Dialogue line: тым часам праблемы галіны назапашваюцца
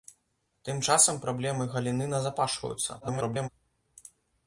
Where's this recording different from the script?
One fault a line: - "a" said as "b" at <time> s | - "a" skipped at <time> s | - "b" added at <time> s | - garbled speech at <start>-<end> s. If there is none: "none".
- garbled speech at 3.0-3.5 s